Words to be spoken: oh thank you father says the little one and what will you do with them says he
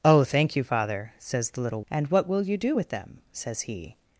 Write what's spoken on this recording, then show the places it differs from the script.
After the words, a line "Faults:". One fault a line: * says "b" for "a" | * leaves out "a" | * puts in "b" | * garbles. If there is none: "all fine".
oh thank you father says the little and what will you do with them says he
Faults:
* leaves out "one"